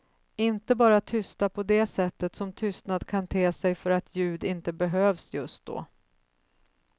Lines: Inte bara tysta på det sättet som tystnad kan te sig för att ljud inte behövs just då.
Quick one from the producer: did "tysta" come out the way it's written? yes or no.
yes